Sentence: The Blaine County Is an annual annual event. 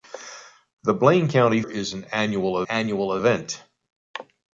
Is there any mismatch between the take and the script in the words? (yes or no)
no